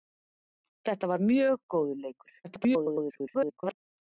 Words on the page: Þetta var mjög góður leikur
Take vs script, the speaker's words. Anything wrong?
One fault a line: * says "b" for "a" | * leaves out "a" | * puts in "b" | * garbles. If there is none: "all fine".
* garbles